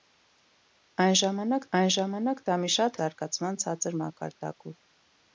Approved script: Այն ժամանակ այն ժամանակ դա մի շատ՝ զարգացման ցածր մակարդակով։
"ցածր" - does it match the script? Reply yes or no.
yes